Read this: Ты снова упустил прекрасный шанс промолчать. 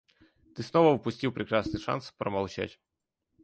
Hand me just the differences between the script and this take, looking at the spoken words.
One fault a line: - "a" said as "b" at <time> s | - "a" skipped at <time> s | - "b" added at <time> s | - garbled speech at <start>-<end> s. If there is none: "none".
none